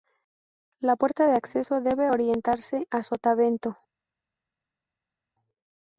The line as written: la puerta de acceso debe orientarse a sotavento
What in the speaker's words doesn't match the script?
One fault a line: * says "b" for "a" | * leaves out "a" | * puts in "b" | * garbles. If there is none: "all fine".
all fine